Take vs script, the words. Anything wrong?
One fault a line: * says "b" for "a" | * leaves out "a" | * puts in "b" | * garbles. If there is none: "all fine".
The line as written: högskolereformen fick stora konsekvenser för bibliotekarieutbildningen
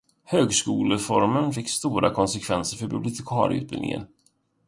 all fine